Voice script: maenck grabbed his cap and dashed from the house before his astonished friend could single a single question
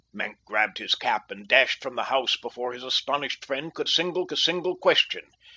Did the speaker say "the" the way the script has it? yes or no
yes